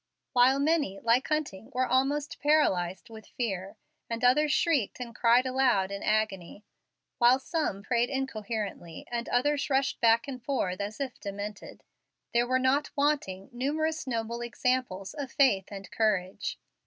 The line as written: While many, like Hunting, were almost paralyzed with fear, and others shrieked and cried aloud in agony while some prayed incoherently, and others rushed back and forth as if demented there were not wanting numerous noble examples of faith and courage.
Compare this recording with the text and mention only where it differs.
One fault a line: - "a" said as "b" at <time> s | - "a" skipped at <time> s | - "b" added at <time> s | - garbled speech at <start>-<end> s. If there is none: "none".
none